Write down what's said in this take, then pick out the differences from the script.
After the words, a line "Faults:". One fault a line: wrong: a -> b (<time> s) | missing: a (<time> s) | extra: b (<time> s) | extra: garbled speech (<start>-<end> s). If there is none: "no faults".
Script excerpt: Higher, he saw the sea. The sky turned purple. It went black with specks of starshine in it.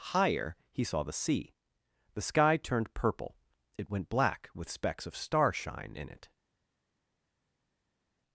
Higher, he saw the sea. The sky turned purple. It went black with specks of starshine in it.
Faults:
no faults